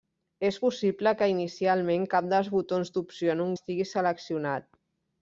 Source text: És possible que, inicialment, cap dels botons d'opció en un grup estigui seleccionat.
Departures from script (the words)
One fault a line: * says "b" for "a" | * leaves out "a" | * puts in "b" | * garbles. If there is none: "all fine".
* leaves out "grup"